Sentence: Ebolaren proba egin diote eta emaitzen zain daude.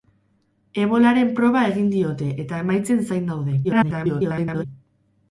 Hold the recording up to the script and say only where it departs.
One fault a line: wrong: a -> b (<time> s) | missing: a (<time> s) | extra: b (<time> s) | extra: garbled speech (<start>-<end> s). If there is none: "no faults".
extra: garbled speech (3.6-4.6 s)